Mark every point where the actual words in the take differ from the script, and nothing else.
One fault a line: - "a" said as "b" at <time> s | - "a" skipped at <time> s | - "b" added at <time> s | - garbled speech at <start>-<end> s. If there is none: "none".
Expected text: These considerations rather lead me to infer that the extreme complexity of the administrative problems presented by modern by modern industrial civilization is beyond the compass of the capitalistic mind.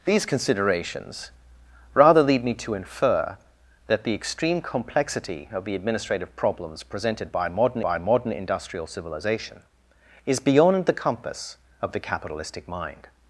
none